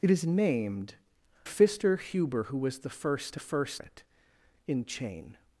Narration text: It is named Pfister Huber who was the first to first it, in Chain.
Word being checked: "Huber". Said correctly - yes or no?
yes